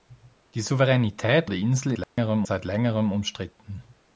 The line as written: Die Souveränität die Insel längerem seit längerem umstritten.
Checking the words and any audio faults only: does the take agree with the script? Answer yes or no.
no